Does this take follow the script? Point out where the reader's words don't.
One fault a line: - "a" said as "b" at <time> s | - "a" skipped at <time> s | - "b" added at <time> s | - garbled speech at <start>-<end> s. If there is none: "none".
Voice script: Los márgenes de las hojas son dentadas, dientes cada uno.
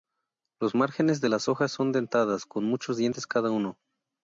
- "con muchos" added at 2.5 s